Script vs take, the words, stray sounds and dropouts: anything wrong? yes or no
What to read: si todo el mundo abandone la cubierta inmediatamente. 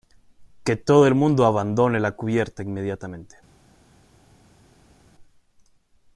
yes